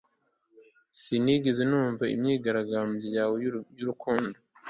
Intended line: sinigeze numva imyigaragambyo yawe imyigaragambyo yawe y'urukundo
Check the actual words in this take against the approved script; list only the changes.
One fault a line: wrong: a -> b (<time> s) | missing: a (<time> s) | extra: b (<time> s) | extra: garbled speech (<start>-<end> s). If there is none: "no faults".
missing: imyigaragambyo yawe (3.4 s)